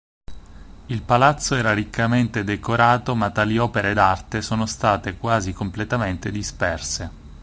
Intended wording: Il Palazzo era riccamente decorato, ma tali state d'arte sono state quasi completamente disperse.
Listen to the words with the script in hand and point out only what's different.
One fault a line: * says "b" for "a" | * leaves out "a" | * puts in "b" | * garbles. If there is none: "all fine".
* says "opere" for "state"